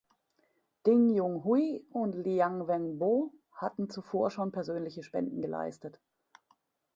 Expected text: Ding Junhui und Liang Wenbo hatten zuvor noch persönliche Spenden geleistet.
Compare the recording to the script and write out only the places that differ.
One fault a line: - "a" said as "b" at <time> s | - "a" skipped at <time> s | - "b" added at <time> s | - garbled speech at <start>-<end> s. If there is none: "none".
- "noch" said as "schon" at 4.3 s